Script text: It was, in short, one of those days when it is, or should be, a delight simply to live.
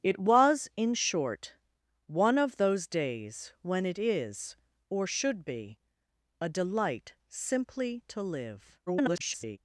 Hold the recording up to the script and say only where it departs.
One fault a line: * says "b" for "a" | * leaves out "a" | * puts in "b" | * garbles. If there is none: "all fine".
* garbles